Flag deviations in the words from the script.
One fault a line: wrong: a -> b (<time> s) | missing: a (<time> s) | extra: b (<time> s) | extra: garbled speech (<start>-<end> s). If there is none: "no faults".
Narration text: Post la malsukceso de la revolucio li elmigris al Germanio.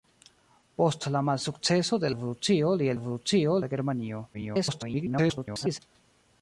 missing: la (2.1 s)
wrong: elmigris -> revolucio (3.0 s)
extra: garbled speech (4.3-5.8 s)